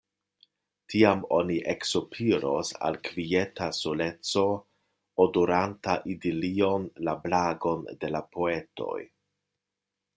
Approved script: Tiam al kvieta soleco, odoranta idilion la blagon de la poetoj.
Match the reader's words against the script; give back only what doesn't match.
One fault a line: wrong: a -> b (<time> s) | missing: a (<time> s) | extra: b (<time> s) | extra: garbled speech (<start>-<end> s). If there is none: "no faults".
extra: oni eksopiros (1.4 s)